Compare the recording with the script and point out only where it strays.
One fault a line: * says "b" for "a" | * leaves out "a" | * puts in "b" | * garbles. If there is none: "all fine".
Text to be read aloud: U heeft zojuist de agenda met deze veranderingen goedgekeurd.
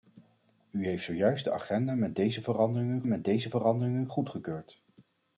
* puts in "met deze veranderingen"